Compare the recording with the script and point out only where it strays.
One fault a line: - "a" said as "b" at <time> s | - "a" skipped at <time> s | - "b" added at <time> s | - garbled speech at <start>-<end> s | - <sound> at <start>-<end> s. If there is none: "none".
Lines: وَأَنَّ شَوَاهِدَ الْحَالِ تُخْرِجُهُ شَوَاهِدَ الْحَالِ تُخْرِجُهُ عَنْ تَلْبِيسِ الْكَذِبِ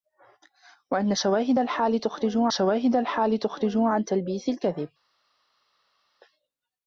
none